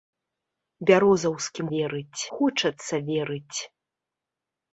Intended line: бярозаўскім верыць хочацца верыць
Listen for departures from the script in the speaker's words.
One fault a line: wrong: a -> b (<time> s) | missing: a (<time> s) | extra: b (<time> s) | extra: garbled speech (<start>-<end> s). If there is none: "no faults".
no faults